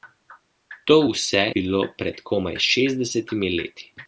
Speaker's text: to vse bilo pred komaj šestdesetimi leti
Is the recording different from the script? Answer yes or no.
no